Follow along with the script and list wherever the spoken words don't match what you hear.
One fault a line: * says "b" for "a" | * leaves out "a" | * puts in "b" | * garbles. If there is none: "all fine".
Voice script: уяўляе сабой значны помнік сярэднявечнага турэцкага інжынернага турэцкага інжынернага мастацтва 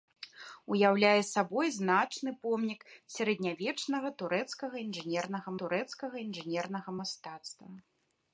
all fine